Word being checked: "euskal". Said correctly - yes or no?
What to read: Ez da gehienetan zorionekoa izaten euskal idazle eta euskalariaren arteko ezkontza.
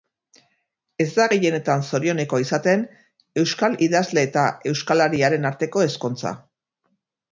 yes